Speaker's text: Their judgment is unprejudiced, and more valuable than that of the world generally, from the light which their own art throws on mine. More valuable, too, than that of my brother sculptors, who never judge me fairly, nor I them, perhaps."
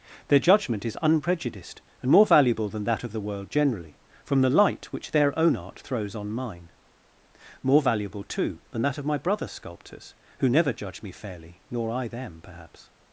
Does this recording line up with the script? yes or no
yes